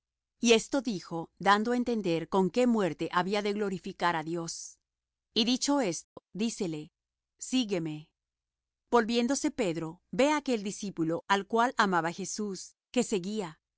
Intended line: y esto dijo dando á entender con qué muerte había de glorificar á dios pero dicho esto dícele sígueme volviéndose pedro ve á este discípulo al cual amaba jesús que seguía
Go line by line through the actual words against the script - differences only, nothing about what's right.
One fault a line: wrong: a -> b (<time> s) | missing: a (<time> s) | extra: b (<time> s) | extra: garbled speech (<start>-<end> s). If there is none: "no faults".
wrong: pero -> y (5.3 s)
wrong: este -> aquel (10.4 s)